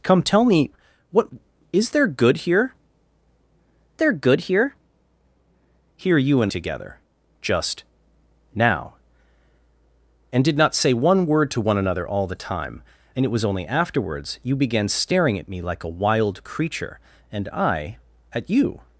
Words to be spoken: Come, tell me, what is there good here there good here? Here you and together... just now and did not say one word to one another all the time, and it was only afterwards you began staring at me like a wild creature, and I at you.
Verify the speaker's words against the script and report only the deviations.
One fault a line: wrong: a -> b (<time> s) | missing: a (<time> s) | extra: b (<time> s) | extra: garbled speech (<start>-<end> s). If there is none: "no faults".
no faults